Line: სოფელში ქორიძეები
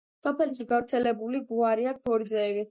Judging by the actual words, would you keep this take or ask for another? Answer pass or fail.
fail